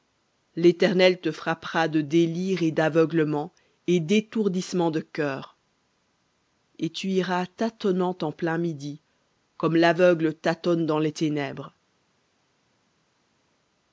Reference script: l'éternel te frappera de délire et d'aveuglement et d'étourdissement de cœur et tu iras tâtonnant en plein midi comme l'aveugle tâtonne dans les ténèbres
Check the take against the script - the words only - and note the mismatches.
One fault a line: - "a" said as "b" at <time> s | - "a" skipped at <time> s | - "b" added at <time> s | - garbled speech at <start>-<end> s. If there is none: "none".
none